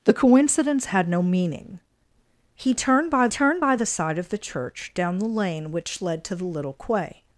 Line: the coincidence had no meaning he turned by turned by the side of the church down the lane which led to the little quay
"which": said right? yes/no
yes